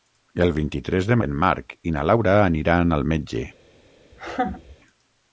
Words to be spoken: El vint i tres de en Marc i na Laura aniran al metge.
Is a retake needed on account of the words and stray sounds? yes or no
yes